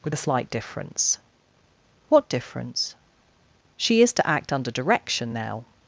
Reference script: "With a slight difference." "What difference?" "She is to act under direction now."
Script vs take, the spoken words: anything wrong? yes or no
no